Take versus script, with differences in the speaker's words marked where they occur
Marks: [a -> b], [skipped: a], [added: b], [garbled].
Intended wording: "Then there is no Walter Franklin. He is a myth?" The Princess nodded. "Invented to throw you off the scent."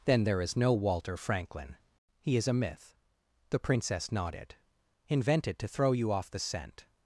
"Then there is no Walter Franklin. He is a myth?" The Princess nodded. "Invented to throw you off the scent."